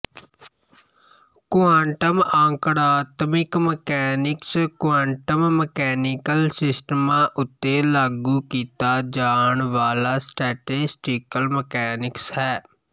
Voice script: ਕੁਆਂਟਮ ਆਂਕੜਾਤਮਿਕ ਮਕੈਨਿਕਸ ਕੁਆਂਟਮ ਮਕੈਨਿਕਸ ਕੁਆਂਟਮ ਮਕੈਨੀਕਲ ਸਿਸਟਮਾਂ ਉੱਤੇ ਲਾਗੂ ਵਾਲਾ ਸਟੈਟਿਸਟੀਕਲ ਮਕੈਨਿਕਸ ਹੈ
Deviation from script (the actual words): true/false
true